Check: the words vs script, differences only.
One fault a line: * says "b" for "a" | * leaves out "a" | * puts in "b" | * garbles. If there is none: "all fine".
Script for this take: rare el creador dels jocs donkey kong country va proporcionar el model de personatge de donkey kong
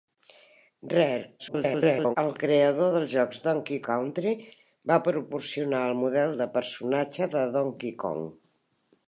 * garbles
* leaves out "kong"